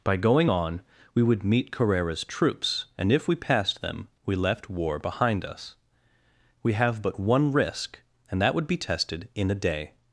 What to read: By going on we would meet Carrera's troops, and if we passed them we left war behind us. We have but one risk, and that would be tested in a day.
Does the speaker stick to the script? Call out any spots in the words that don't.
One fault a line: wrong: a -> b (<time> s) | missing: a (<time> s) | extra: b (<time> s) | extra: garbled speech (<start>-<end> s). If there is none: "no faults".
no faults